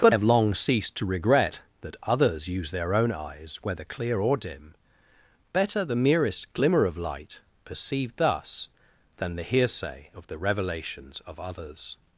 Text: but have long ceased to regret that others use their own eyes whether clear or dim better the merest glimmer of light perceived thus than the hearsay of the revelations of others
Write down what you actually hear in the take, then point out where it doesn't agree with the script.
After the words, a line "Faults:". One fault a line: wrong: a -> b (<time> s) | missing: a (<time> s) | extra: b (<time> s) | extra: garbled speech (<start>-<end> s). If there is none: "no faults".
but have long ceased to regret that others use their own eyes whether clear or dim better the merest glimmer of light perceived thus than the hearsay of the revelations of others
Faults:
no faults